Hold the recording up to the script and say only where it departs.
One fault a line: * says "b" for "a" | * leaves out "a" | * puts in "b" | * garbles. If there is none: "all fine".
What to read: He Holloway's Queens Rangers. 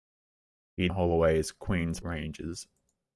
all fine